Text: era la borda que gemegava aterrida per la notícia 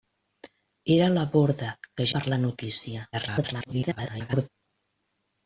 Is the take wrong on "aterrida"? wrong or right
wrong